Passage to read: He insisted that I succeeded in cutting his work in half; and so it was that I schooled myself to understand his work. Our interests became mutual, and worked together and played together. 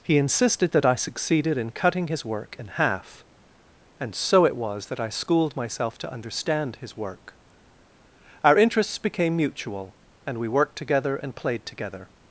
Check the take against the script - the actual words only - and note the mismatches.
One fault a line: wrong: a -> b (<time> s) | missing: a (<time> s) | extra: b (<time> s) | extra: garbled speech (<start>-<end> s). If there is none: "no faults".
extra: we (10.4 s)